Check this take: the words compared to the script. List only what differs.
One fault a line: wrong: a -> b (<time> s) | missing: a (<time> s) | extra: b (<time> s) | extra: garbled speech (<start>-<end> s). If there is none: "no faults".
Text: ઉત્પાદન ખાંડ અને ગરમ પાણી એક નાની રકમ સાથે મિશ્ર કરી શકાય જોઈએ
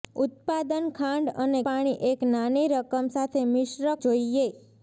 missing: ગરમ (1.6 s)
missing: કરી શકાય (3.9 s)